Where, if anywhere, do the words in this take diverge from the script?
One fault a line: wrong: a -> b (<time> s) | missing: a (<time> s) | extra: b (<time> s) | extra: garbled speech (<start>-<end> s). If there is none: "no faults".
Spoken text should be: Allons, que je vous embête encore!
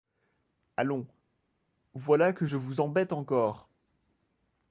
extra: voilà (1.9 s)